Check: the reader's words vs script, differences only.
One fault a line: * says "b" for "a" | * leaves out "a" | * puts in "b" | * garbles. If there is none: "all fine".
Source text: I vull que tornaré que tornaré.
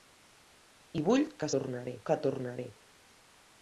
all fine